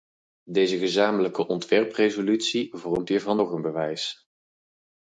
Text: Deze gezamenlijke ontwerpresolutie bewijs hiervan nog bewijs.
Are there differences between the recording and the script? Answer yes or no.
yes